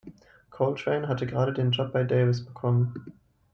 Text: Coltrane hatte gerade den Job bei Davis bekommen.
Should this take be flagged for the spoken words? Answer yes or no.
no